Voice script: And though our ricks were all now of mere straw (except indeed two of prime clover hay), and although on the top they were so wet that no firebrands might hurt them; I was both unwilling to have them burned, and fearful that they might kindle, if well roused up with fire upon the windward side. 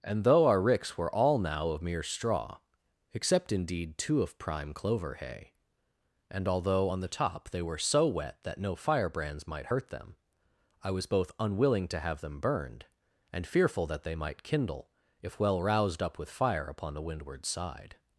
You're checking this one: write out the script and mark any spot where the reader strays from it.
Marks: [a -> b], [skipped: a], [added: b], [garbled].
And though our ricks were all now of mere straw (except indeed two of prime clover hay), and although on the top they were so wet that no firebrands might hurt them; I was both unwilling to have them burned, and fearful that they might kindle, if well roused up with fire upon the windward side.